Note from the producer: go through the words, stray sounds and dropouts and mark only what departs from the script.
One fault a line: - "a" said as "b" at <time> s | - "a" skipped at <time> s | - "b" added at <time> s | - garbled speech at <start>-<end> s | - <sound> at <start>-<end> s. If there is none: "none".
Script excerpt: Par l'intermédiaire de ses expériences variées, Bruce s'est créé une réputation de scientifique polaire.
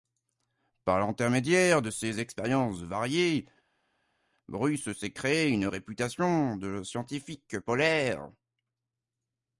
none